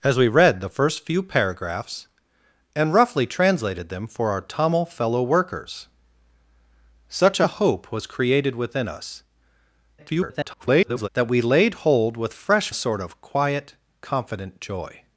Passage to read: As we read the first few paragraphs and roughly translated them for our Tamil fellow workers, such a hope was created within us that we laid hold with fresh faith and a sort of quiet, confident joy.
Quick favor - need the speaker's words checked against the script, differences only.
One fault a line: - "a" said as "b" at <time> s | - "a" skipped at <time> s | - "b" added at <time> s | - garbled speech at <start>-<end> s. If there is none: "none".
- garbled speech at 10.0-11.1 s
- "faith and" skipped at 12.7 s